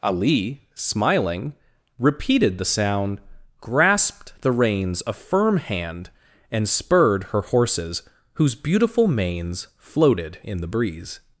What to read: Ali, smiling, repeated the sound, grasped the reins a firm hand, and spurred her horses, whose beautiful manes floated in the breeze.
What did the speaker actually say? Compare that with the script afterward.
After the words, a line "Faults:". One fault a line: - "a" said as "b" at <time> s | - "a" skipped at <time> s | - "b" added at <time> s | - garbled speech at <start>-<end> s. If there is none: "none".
Ali, smiling, repeated the sound, grasped the reins a firm hand, and spurred her horses, whose beautiful manes floated in the breeze.
Faults:
none